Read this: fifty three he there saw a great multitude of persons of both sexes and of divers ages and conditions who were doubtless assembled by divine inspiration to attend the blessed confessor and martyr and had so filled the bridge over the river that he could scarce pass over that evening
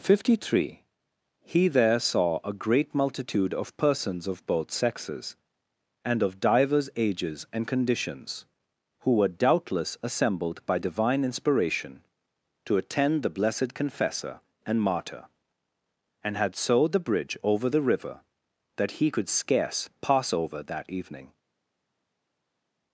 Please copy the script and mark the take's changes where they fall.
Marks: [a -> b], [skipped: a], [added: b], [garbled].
fifty three he there saw a great multitude of persons of both sexes and of divers ages and conditions who were doubtless assembled by divine inspiration to attend the blessed confessor and martyr and had so [skipped: filled] the bridge over the river that he could scarce pass over that evening